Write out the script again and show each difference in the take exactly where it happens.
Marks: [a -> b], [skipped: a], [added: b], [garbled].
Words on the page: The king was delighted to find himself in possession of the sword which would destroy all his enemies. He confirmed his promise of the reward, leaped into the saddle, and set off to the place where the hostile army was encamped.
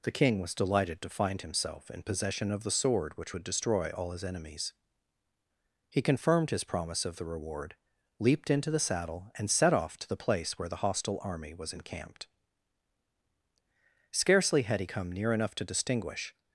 The king was delighted to find himself in possession of the sword which would destroy all his enemies. He confirmed his promise of the reward, leaped into the saddle, and set off to the place where the hostile army was encamped. [added: Scarcely had he come near enough to distinguish]